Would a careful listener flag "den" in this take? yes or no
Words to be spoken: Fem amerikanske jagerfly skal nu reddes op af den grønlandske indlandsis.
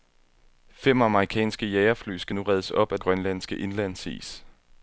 yes